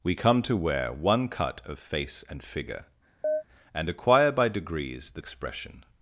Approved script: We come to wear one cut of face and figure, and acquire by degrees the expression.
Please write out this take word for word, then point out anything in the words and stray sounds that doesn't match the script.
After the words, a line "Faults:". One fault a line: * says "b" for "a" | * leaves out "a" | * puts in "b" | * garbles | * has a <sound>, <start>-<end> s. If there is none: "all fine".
We come to wear one cut of face and figure, and acquire by degrees the expression.
Faults:
* has a chirp, 3.2-3.4 s